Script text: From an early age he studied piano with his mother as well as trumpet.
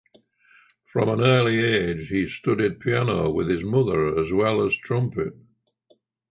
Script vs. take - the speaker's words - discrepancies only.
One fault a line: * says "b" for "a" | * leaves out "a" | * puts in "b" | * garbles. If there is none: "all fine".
all fine